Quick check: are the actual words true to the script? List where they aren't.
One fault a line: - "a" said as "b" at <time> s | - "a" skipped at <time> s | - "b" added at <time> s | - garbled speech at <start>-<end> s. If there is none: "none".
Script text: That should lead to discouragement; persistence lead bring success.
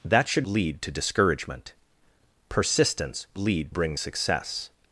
none